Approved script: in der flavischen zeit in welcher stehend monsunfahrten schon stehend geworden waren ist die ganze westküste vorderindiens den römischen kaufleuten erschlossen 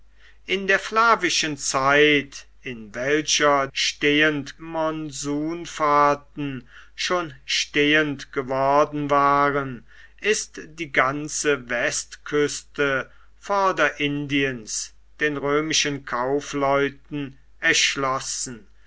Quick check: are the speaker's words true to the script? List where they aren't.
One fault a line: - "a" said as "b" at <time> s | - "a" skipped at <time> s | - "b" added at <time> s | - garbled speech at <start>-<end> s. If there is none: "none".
none